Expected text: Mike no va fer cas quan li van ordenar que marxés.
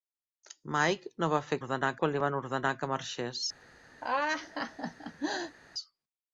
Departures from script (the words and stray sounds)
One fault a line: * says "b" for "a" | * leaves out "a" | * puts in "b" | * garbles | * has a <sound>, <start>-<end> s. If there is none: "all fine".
* says "ordenar" for "cas"
* has a laugh, 4.0-5.6 s